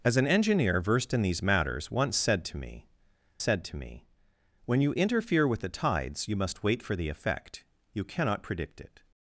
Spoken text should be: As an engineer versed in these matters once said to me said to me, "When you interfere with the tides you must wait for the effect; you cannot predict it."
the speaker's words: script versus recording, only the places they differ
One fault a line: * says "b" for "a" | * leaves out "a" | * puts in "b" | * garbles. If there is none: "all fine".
all fine